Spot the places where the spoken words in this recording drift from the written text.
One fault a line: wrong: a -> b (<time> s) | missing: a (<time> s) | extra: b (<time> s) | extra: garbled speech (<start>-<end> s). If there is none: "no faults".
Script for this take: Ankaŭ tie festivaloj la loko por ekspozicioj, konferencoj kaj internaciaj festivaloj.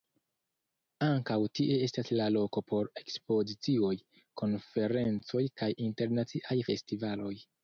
wrong: festivaloj -> estas (1.9 s)